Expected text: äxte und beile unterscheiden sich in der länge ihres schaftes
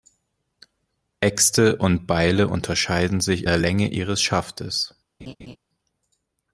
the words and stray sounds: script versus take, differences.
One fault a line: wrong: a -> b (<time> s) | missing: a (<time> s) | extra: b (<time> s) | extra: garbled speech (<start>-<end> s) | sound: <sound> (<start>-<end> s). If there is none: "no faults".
missing: in (3.5 s)
sound: laugh (5.2-5.6 s)